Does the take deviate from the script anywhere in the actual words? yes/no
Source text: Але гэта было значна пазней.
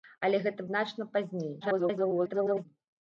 yes